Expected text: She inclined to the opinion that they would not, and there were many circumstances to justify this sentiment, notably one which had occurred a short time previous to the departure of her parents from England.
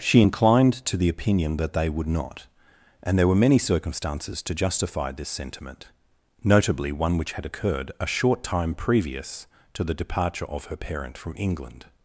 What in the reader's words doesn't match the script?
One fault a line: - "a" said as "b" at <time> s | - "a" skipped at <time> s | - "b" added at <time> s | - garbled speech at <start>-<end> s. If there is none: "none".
- "parents" said as "parent" at 10.8 s